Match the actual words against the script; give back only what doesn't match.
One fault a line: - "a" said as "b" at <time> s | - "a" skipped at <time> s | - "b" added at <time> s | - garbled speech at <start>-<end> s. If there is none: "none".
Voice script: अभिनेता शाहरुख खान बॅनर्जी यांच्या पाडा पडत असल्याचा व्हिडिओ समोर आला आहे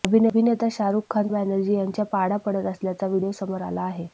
none